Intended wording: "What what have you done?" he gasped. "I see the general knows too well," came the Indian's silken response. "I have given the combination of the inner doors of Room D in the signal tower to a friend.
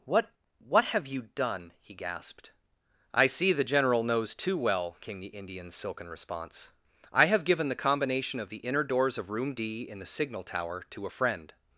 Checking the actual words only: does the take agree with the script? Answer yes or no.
yes